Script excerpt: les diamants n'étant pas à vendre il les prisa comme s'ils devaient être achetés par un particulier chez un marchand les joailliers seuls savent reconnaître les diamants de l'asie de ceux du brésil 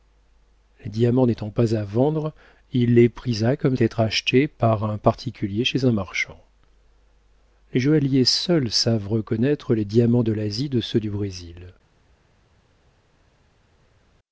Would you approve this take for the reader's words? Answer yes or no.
no